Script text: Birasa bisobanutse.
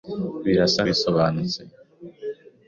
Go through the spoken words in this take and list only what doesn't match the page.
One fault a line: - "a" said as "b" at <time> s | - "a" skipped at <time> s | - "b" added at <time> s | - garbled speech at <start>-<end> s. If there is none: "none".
none